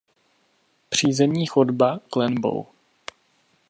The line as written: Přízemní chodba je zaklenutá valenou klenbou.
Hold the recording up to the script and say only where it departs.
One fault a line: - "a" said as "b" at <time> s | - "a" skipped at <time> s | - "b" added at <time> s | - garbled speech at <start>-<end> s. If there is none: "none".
- "je zaklenutá valenou" skipped at 2.0 s